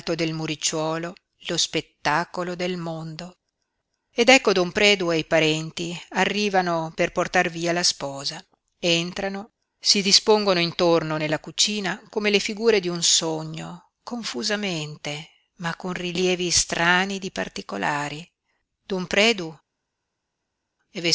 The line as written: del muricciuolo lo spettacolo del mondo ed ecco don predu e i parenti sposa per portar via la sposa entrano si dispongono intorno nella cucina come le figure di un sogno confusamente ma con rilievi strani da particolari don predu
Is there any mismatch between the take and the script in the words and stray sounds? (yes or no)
yes